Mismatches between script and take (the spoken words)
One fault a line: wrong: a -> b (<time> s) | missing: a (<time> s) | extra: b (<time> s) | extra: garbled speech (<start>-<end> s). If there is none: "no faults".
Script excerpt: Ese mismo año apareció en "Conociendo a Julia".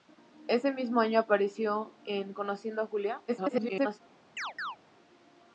extra: garbled speech (3.3-4.0 s)